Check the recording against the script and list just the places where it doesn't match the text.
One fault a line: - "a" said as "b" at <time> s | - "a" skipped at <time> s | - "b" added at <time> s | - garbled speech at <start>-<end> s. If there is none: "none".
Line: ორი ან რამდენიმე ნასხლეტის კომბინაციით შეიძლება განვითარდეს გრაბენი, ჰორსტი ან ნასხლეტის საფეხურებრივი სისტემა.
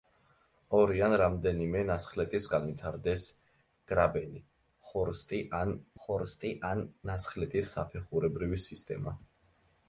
- "კომბინაციით შეიძლება განვითარდეს გრაბენი" said as "განვითარდეს გრაბენი ჰორსტი ან" at 2.6 s